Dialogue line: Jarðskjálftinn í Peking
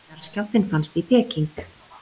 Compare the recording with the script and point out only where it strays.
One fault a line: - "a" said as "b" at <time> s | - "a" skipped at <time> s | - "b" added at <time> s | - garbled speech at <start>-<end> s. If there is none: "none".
- "fannst" added at 0.7 s